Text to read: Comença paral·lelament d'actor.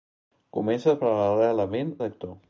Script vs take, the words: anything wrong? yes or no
no